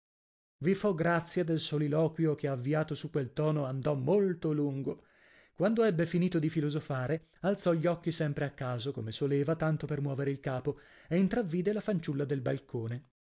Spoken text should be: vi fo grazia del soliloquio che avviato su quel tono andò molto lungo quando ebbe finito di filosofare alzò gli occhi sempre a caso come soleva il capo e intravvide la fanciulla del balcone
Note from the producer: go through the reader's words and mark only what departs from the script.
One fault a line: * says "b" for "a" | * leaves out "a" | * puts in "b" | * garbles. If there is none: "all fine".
* puts in "tanto per muovere"